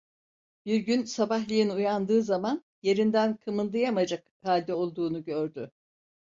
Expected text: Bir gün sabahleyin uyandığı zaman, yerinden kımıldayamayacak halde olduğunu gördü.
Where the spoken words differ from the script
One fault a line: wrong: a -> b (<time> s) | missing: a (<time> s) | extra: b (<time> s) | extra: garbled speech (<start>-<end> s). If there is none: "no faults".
no faults